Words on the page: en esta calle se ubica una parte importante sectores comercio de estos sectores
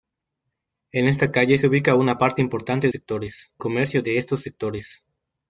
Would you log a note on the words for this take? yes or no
no